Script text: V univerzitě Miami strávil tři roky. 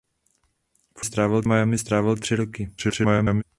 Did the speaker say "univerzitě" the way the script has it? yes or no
no